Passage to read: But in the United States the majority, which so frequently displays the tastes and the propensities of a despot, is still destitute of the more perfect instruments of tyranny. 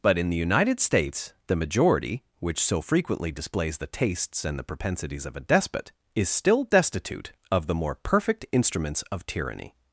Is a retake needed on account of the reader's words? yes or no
no